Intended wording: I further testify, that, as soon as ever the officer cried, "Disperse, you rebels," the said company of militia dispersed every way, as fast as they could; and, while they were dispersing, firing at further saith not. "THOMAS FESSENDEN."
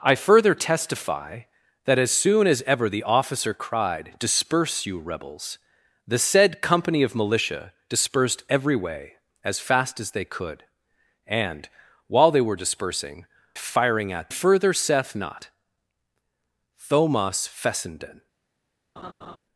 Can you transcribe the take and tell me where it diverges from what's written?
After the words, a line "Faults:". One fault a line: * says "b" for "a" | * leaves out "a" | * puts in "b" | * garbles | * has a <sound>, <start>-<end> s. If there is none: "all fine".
I further testify, that, as soon as ever the officer cried, "Disperse, you rebels," the said company of militia dispersed every way, as fast as they could; and, while they were dispersing, firing at further saith not. "THOMAS FESSENDEN."
Faults:
* has a laugh, 19.0-19.4 s